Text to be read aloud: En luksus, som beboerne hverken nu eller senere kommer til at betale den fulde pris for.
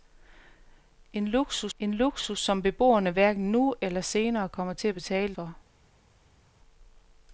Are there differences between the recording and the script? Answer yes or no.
yes